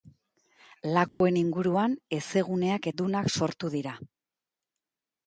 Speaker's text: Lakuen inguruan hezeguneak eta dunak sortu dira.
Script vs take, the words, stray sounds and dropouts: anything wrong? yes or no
yes